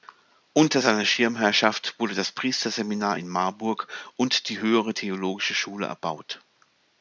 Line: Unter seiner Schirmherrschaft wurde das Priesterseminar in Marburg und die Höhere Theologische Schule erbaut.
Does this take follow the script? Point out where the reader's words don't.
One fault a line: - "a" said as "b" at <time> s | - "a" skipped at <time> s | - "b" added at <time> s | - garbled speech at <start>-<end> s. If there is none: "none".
none